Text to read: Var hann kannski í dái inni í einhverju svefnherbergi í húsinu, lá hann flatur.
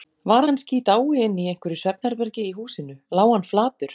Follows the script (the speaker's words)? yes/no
no